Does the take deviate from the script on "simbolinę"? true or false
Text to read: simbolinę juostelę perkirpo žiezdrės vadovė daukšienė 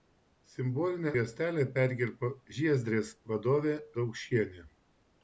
false